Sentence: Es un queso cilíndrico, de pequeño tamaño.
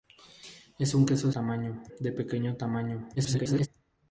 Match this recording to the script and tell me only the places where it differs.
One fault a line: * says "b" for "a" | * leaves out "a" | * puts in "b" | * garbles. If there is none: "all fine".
* says "tamaño" for "cilíndrico"
* garbles